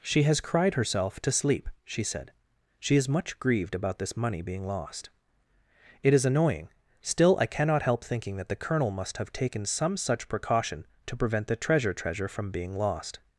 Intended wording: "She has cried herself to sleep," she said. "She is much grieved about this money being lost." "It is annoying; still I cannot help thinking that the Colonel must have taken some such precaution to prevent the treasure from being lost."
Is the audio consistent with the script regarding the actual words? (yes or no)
no